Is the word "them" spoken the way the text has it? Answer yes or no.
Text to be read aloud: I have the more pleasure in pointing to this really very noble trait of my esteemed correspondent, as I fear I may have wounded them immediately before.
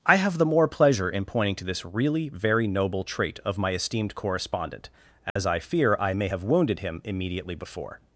no